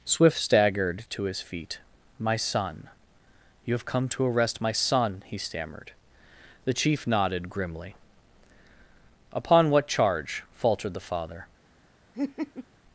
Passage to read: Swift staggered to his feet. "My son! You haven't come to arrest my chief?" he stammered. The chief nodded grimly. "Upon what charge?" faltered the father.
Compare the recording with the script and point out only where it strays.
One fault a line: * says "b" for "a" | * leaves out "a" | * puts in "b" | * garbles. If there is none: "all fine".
* says "have" for "haven't"
* says "son" for "chief"